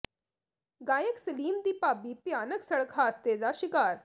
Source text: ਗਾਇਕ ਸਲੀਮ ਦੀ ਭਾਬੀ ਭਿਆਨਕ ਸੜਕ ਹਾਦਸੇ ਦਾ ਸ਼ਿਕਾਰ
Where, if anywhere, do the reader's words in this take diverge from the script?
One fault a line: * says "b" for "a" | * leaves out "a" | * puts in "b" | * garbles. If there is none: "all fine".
all fine